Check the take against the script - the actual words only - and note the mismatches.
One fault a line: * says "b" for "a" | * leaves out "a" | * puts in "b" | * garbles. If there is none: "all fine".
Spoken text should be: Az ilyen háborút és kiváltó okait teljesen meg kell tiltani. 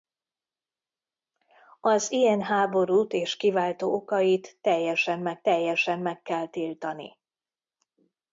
* puts in "teljesen meg"